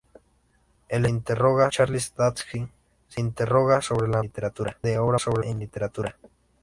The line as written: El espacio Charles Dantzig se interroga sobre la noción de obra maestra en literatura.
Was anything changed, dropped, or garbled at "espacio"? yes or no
yes